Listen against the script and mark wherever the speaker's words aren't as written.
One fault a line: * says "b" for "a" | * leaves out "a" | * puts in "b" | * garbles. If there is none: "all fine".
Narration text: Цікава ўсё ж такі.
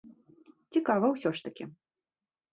all fine